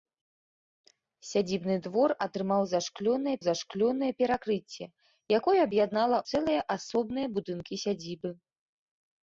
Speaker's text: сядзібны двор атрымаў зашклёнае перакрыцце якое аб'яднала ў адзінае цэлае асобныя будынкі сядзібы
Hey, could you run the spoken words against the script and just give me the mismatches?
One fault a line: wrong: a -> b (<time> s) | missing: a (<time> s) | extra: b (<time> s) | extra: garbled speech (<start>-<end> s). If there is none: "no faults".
extra: зашклёнае (3.4 s)
missing: ў адзінае (6.2 s)